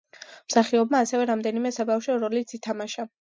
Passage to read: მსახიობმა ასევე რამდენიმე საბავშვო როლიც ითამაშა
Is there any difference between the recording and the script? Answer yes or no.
no